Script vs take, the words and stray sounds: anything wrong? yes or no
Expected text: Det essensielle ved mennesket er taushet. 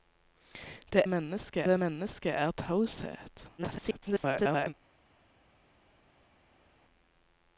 yes